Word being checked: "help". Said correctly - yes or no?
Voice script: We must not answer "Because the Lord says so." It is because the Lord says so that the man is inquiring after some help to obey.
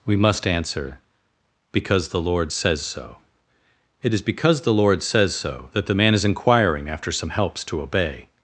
no